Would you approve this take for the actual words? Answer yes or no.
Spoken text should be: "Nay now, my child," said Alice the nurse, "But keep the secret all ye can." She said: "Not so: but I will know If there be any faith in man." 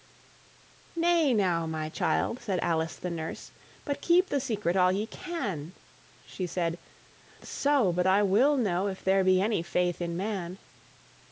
no